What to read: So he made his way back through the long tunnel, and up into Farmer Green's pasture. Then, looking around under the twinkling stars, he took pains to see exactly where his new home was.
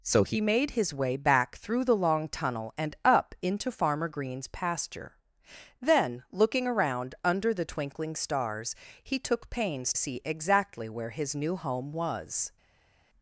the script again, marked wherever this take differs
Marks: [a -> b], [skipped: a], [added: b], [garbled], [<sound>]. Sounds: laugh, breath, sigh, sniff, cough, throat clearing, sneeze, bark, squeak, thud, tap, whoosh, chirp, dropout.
So he made his way back through the long tunnel, and up into Farmer Green's pasture. Then, looking around under the twinkling stars, he took pains [skipped: to] see exactly where his new home was.